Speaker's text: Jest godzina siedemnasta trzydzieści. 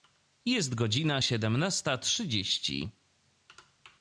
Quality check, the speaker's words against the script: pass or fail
pass